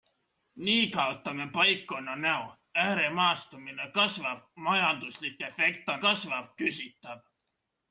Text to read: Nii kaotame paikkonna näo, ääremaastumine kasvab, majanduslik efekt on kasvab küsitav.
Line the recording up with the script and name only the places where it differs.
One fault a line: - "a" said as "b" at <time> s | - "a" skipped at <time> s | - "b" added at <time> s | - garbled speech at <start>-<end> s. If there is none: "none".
none